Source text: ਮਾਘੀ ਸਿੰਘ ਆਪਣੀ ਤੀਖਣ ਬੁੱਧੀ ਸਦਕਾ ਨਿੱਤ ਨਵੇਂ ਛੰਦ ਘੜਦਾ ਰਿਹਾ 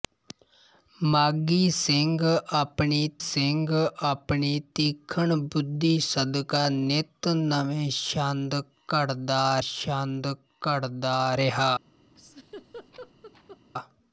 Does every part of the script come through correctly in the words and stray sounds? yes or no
no